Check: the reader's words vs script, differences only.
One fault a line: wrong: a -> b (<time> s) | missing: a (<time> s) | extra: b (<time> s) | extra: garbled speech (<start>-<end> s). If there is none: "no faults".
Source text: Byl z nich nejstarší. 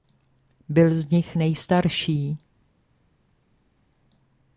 no faults